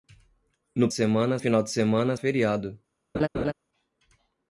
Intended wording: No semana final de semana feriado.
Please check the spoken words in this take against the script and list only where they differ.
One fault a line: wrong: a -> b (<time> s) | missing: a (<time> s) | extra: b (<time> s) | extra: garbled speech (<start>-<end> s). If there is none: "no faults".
no faults